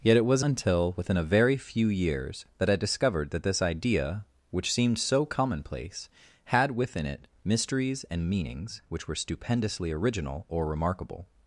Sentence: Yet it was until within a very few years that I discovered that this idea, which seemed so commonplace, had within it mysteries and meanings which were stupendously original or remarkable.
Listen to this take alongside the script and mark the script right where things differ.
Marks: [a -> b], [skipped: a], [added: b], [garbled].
Yet it was until within a very few years that I discovered that this idea, which seemed so commonplace, had within it mysteries and meanings which were stupendously original or remarkable.